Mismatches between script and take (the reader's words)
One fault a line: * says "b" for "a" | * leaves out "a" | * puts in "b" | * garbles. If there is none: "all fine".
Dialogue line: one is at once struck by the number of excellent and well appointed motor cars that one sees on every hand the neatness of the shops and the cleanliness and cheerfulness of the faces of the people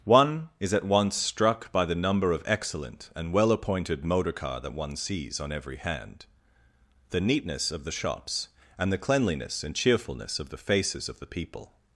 * says "car" for "cars"